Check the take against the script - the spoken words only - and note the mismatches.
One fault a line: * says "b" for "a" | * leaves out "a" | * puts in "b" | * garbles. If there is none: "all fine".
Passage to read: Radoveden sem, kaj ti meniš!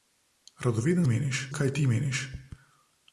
* says "meniš" for "sem"